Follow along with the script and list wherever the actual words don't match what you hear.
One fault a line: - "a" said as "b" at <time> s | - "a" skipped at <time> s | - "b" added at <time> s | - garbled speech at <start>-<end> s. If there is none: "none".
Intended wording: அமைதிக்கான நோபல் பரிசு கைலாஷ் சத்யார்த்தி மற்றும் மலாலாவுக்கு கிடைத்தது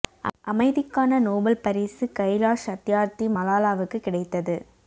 - "மற்றும்" skipped at 3.3 s